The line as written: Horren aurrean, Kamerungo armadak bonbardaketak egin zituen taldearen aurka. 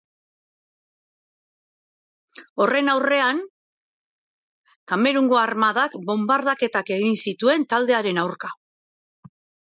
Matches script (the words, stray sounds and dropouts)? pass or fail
pass